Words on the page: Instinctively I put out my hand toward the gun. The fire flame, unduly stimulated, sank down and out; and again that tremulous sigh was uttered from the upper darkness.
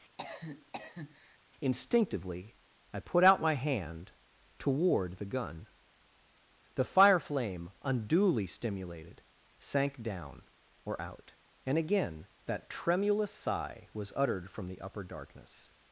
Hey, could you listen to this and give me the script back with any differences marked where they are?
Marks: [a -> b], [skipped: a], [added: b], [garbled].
Instinctively I put out my hand toward the gun. The fire flame, unduly stimulated, sank down [and -> or] out; and again that tremulous sigh was uttered from the upper darkness.